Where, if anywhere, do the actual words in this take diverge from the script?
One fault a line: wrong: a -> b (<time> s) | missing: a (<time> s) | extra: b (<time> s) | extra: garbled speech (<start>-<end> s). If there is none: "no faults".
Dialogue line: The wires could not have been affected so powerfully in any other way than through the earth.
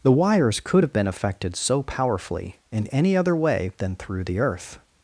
missing: not (0.8 s)